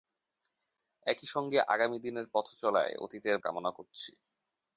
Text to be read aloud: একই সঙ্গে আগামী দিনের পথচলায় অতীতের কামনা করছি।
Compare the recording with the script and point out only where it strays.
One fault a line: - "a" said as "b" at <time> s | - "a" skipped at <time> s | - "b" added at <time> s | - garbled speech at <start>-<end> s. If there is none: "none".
none